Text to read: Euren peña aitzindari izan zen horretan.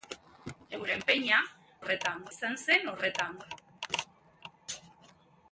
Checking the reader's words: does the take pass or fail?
fail